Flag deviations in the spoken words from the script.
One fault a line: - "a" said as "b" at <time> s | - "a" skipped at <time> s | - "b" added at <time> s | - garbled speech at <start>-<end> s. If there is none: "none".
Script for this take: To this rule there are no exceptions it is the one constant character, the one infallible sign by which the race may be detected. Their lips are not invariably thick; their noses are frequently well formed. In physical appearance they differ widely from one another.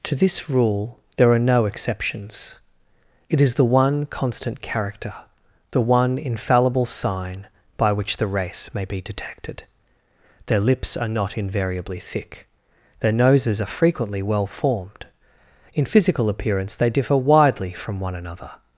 none